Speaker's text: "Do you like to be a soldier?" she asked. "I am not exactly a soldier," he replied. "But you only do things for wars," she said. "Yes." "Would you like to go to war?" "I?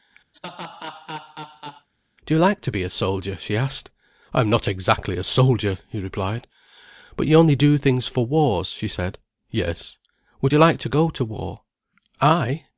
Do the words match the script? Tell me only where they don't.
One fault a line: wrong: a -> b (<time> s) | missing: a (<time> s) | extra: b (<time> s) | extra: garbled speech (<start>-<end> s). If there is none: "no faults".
no faults